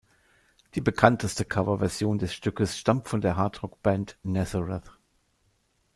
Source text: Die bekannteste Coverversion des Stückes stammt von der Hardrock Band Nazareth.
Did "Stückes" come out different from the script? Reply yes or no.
no